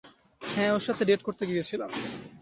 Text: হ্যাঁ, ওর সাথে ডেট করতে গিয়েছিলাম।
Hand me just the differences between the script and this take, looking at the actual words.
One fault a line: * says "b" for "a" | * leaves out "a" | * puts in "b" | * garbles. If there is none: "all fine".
all fine